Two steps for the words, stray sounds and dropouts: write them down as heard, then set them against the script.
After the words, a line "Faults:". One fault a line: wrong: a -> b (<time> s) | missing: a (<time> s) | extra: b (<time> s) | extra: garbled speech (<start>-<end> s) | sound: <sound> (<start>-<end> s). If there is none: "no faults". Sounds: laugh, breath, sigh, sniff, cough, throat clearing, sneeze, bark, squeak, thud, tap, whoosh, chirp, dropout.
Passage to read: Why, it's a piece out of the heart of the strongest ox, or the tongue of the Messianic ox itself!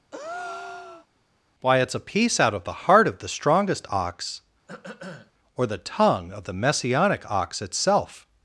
Why, it's a piece out of the heart of the strongest ox, or the tongue of the Messianic ox itself!
Faults:
sound: breath (0.1-1.1 s)
sound: throat clearing (4.7-5.3 s)